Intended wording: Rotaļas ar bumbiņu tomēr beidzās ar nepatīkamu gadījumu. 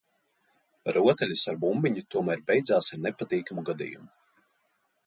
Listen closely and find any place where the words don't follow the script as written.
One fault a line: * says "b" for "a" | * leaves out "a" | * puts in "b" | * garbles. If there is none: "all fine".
all fine